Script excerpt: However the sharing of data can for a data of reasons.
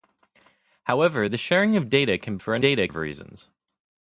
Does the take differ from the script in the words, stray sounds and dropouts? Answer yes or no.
no